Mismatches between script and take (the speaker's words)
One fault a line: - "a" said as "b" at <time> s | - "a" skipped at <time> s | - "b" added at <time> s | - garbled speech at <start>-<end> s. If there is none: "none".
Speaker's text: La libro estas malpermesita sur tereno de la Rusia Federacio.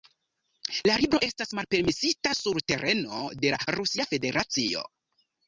none